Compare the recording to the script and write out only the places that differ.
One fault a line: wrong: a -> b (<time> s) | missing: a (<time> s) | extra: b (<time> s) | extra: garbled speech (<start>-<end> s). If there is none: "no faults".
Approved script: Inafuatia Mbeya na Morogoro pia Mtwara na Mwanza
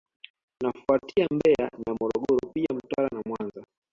no faults